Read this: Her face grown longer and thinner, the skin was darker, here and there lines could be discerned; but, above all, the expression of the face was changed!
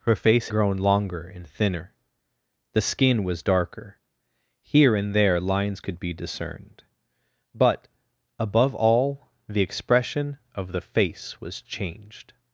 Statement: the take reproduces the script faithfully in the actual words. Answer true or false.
true